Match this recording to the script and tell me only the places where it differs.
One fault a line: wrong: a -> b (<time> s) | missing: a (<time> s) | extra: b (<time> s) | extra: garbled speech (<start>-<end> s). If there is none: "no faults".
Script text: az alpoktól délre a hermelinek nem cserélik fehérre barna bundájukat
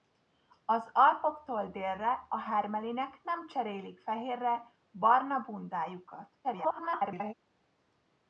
extra: garbled speech (6.4-7.3 s)